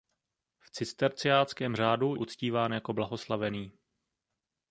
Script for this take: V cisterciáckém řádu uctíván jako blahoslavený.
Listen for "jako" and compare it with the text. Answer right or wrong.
right